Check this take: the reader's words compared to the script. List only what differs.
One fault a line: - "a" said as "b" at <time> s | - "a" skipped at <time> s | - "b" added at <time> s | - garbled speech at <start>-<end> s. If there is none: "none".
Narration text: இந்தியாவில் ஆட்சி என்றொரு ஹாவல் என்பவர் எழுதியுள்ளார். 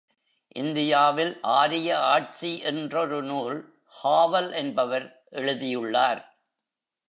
- "ஆரிய" added at 1.4 s
- "நூல்" added at 3.2 s